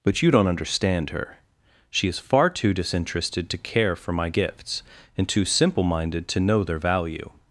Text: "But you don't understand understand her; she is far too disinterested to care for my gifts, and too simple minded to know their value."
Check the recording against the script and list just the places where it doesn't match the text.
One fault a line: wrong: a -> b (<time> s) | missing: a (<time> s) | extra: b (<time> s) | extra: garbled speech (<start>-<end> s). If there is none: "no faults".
missing: understand (1.1 s)